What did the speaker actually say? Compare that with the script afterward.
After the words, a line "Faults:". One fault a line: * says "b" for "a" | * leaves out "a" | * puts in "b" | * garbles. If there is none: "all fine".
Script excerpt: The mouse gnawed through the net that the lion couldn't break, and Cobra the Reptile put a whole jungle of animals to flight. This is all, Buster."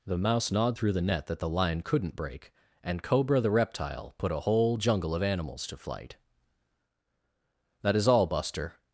The mouse gnawed through the net that the lion couldn't break, and Cobra the Reptile put a whole jungle of animals to flight. That is all, Buster."
Faults:
* says "That" for "This"